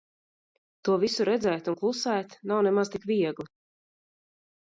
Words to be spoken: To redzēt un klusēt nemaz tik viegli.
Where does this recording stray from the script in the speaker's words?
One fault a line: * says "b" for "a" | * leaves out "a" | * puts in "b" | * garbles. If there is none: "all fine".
* puts in "visu"
* puts in "nav"